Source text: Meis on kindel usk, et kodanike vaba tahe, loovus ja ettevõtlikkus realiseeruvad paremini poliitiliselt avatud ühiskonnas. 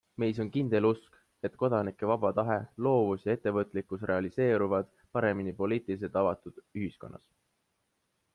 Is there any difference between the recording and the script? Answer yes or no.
no